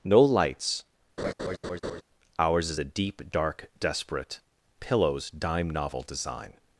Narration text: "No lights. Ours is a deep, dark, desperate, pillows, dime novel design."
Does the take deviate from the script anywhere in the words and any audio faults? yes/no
yes